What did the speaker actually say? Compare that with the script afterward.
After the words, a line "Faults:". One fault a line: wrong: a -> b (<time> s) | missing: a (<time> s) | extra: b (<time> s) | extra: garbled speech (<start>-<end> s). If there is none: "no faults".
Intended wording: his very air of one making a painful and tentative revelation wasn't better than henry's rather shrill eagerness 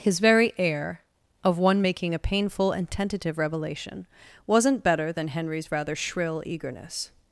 his very air of one making a painful and tentative revelation wasn't better than henry's rather shrill eagerness
Faults:
no faults